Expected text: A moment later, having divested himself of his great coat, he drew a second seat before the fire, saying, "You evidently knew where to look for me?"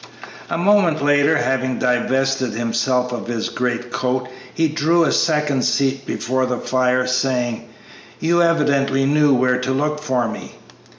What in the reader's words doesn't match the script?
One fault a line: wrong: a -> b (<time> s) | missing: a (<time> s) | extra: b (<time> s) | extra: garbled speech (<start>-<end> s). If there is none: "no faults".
no faults